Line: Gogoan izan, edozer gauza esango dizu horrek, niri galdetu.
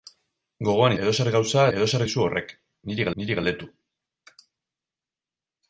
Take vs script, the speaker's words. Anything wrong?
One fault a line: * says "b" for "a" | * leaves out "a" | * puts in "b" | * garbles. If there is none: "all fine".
* leaves out "izan"
* says "edozer" for "esango"
* puts in "niri"